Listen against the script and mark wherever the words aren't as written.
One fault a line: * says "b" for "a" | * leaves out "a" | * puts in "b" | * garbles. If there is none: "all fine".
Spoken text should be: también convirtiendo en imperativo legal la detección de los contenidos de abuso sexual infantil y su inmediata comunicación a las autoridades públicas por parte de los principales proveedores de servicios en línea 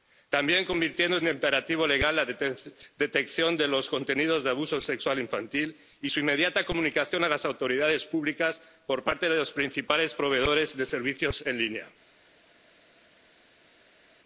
all fine